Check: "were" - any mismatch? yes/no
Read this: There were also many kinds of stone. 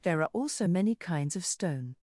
yes